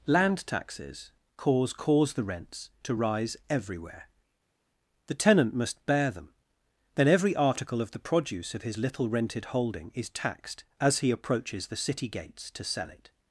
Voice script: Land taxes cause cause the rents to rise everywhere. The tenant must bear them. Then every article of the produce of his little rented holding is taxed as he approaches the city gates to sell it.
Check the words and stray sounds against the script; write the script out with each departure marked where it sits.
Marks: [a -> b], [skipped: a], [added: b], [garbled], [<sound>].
Land taxes cause cause the rents to rise everywhere. The tenant must bear them. Then every article of the produce of his little rented holding is taxed as he approaches the city gates to sell it.